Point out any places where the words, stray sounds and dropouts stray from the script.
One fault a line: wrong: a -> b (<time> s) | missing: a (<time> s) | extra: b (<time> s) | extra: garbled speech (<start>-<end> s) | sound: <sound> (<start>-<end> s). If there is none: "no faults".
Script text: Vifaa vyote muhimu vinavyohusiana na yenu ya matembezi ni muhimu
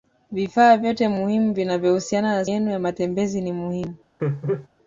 sound: laugh (4.2-4.7 s)